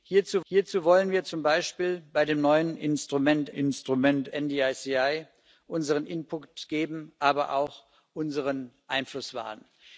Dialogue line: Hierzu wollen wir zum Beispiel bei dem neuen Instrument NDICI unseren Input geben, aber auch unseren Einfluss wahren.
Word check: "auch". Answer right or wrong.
right